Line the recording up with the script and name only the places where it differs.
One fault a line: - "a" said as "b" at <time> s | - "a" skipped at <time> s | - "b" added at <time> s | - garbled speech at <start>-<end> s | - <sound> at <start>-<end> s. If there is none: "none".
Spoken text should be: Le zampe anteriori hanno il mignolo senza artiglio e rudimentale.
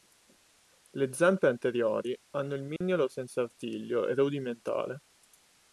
- dropout at 2.8-2.8 s